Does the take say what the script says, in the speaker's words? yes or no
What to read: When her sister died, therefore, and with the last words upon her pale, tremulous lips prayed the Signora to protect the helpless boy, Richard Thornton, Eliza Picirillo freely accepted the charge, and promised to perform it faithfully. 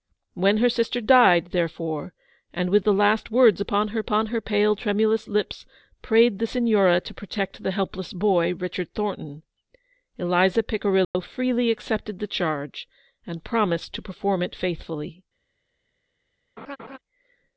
no